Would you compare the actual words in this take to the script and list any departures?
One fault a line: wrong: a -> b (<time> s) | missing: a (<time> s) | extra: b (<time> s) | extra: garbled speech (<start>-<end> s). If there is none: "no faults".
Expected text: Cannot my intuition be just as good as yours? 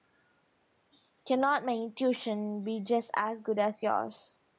no faults